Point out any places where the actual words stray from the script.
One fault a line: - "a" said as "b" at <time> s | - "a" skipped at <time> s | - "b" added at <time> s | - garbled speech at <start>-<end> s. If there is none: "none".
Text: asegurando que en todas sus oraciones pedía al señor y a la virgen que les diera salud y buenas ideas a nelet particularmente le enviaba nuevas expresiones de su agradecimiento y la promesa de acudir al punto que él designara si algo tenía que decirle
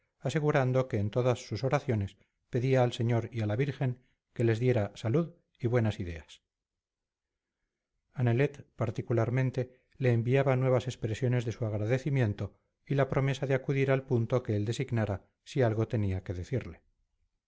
none